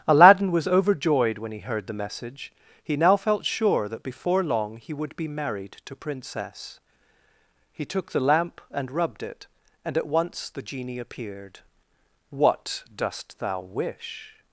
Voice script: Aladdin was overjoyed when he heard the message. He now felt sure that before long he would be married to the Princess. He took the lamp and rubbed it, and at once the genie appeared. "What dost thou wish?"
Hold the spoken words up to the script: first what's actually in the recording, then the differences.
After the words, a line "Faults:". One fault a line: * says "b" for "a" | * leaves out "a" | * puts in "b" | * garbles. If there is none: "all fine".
Aladdin was overjoyed when he heard the message. He now felt sure that before long he would be married to Princess. He took the lamp and rubbed it, and at once the genie appeared. "What dost thou wish?"
Faults:
* leaves out "the"